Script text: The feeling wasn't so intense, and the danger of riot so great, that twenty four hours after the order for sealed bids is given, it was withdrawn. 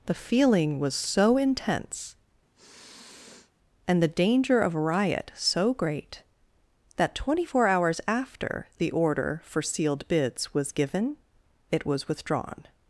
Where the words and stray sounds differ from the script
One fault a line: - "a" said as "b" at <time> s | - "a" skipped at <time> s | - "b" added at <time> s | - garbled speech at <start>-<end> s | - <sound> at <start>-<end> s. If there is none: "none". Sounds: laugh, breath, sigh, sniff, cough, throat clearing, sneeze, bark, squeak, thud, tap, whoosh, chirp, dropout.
- "wasn't" said as "was" at 0.8 s
- sniff at 2.5-3.5 s
- "is" said as "was" at 10.5 s